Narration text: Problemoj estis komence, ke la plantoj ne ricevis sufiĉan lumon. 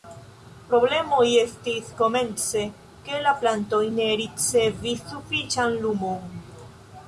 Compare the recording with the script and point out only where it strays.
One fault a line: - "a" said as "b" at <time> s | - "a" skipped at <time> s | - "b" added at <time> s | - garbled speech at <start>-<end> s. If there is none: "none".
none